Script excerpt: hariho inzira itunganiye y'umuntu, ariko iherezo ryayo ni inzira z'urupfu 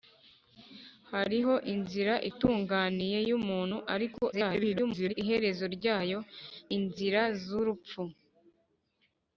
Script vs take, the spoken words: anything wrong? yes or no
yes